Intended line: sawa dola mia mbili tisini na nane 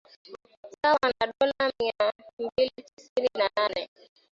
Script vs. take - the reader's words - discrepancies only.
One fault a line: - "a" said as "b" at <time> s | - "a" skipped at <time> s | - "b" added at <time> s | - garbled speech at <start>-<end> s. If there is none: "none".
- "na" added at 1.1 s